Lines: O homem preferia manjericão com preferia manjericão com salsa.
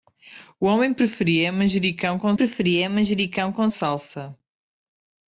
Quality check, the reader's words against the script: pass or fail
pass